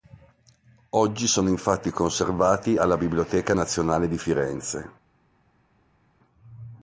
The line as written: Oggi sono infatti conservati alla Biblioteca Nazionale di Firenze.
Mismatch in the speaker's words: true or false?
false